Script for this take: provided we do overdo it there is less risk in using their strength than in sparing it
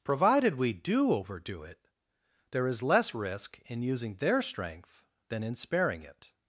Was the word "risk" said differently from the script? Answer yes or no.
no